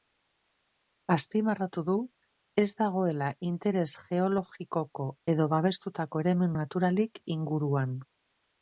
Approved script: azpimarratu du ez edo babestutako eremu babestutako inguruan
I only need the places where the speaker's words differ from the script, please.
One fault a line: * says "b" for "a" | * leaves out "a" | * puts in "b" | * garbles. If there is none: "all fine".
* puts in "dagoela interes geologikoko"
* says "naturalik" for "babestutako"